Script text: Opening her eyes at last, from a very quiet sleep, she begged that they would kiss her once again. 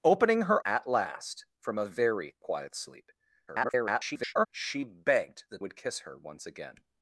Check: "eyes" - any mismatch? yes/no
yes